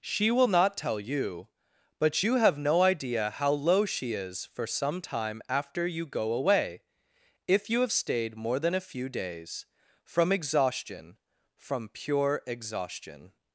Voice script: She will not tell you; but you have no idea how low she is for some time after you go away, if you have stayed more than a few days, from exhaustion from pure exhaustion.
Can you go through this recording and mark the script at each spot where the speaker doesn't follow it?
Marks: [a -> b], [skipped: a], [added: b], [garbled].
She will not tell you; but you have no idea how low she is for some time after you go away, if you have stayed more than a few days, from exhaustion from pure exhaustion.